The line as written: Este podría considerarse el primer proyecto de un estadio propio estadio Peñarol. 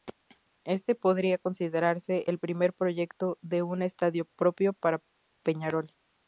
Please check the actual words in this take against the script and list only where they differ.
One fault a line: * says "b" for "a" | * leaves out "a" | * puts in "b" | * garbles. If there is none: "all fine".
* says "para" for "estadio"